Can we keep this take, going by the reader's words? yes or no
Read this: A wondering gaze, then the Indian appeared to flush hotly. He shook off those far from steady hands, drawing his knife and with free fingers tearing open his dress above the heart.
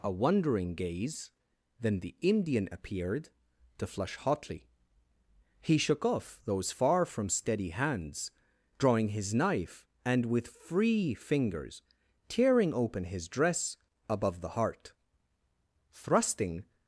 no